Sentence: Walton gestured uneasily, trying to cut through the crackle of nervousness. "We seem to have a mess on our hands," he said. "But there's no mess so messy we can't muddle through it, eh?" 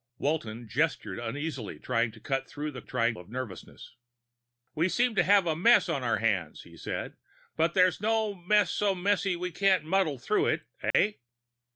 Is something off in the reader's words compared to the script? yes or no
yes